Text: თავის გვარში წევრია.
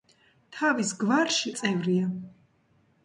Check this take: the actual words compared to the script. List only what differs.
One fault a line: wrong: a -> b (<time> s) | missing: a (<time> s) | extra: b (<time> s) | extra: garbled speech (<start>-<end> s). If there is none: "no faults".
no faults